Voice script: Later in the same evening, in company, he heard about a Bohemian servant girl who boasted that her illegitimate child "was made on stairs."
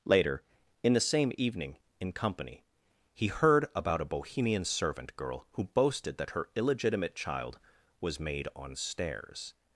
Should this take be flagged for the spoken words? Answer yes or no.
no